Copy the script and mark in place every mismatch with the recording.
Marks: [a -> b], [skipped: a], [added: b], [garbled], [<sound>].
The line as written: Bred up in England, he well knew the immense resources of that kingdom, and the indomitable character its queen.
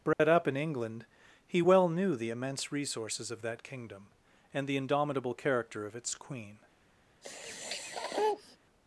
Bred [dropout] up in England, he well knew the immense resources of that kingdom, and the indomitable character [added: of] its queen. [sniff]